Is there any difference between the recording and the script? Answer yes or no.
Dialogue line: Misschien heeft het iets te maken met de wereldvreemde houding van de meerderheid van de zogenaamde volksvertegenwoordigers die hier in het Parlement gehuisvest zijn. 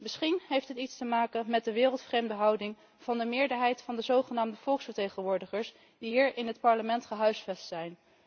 no